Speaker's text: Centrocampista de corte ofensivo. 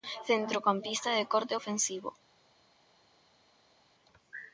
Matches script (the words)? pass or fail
pass